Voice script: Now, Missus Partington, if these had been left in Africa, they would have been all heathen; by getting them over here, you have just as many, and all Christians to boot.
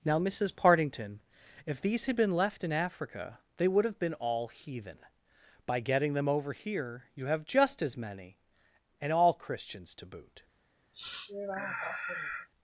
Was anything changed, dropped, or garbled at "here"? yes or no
no